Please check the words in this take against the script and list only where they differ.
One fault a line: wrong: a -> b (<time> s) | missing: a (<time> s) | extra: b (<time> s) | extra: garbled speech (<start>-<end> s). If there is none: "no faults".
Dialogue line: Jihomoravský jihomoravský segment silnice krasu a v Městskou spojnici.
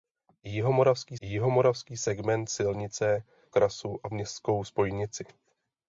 no faults